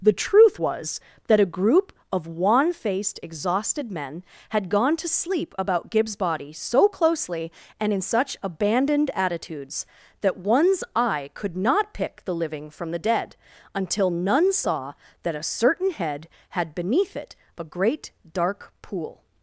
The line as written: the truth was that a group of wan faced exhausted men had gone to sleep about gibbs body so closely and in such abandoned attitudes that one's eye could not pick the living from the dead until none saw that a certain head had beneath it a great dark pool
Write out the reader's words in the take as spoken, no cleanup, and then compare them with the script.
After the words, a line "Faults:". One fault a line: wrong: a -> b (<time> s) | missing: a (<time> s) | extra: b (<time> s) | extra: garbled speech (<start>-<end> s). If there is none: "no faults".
the truth was that a group of wan faced exhausted men had gone to sleep about gibbs body so closely and in such abandoned attitudes that one's eye could not pick the living from the dead until none saw that a certain head had beneath it a great dark pool
Faults:
no faults